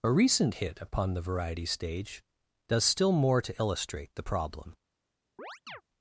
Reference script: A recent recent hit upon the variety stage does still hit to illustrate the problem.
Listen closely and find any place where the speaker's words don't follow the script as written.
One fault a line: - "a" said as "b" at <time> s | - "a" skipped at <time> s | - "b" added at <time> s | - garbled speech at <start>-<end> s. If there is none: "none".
- "recent" skipped at 0.6 s
- "hit" said as "more" at 3.1 s